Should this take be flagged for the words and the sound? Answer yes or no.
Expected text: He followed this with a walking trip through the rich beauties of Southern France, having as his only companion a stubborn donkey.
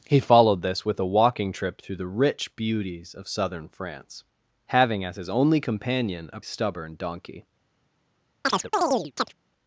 yes